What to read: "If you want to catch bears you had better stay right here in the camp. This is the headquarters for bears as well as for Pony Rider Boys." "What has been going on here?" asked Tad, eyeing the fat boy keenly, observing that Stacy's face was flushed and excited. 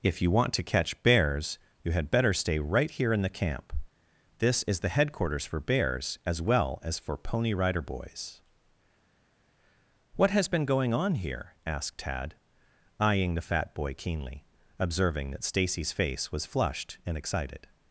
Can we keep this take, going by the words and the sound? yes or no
yes